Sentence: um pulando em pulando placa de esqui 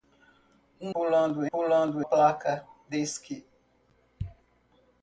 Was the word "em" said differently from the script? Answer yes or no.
no